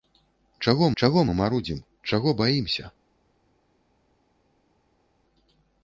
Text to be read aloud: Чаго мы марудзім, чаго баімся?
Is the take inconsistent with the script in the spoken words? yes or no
yes